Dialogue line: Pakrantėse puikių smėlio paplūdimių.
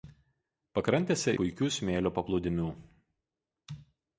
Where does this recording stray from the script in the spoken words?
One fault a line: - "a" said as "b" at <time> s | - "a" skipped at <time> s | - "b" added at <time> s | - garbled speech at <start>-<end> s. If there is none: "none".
none